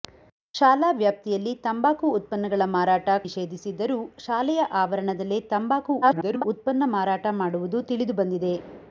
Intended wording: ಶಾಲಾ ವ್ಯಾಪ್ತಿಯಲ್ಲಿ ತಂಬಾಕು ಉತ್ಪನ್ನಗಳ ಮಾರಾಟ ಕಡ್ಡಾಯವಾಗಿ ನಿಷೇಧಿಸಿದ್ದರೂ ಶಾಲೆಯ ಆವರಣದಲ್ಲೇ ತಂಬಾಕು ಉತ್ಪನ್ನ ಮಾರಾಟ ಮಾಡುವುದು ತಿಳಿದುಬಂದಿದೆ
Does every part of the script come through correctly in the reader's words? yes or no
no